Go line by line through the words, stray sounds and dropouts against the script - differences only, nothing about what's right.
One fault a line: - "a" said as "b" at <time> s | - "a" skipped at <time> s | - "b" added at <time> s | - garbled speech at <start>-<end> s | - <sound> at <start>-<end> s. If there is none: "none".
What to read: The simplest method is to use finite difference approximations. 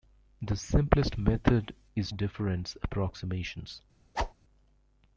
- "to use finite" skipped at 2.1 s
- whoosh at 4.1-4.3 s